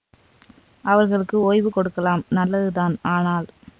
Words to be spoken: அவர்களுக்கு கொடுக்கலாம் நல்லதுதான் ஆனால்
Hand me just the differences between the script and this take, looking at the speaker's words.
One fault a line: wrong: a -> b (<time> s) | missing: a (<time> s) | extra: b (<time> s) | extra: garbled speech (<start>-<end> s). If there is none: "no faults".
extra: ஓய்வு (1.4 s)